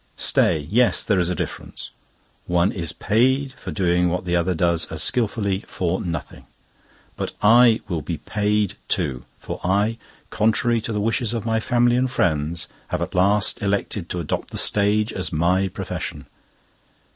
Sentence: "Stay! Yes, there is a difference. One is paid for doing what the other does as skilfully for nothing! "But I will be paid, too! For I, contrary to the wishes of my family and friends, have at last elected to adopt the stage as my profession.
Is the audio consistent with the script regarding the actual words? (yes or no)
yes